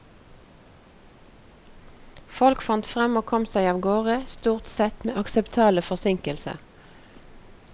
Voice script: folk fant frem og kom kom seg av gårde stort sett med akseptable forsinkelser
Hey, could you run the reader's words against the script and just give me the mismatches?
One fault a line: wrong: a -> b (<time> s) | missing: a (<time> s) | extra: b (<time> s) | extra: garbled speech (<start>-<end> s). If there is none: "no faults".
missing: kom (3.5 s)